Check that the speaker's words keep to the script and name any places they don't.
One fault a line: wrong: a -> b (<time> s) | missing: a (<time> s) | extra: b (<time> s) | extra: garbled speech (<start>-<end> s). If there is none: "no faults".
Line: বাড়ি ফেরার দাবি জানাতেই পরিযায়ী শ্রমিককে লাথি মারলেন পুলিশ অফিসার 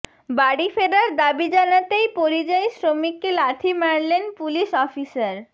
no faults